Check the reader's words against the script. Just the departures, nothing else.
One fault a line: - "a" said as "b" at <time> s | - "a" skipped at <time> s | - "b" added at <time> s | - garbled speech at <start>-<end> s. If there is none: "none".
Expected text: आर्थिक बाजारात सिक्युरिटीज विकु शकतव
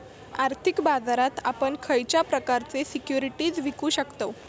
- "आपण खयच्या प्रकारचे" added at 1.4 s